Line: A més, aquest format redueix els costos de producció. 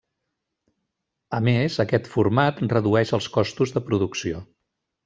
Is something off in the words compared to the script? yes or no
no